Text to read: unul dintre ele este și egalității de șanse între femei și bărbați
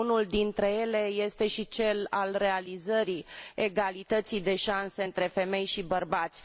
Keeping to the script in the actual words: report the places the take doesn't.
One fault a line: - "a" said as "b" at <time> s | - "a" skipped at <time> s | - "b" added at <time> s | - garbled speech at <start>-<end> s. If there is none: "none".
- "cel al realizării" added at 1.7 s